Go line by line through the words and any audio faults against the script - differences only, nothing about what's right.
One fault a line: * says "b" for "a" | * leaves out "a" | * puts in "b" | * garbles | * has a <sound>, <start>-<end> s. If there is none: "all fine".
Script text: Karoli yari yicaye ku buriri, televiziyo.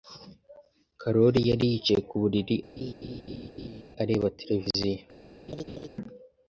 * has a laugh, 2.8-3.8 s
* puts in "areba"
* has a laugh, 5.5-5.9 s